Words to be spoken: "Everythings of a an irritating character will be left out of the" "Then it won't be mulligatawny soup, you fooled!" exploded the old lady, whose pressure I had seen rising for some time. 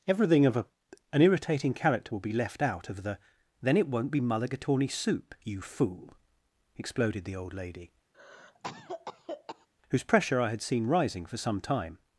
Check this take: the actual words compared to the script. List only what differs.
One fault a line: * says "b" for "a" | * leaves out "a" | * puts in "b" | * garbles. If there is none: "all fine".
* says "Everything" for "Everythings"
* says "fool" for "fooled"